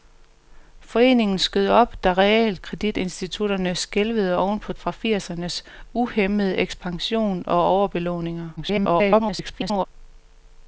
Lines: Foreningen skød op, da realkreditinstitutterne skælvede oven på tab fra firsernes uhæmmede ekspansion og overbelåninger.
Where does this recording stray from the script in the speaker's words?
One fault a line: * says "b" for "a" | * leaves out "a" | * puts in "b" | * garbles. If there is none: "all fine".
* leaves out "tab"
* garbles